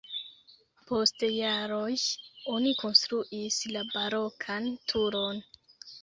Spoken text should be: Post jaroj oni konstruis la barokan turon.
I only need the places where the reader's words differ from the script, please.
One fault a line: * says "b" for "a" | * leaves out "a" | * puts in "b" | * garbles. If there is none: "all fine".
all fine